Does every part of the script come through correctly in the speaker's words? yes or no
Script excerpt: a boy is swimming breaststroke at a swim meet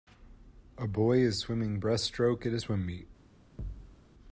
yes